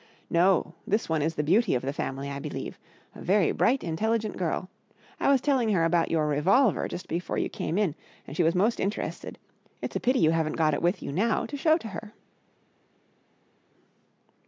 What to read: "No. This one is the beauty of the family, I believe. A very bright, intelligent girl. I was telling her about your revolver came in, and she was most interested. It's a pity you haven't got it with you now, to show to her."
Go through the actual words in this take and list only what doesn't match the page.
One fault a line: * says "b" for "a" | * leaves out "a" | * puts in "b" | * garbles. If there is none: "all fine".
* puts in "just before you"